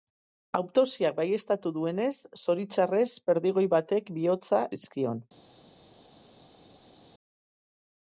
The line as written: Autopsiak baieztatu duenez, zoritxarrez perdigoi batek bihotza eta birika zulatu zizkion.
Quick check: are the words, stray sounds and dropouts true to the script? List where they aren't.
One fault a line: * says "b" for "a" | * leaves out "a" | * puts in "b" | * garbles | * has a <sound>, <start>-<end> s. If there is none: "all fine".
* leaves out "eta birika zulatu"